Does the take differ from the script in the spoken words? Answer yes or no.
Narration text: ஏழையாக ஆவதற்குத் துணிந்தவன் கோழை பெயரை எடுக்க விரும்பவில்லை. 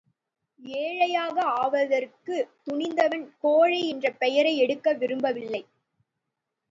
yes